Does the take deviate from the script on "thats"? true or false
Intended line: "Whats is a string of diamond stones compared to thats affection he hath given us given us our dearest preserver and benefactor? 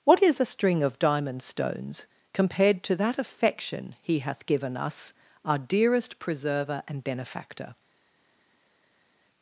true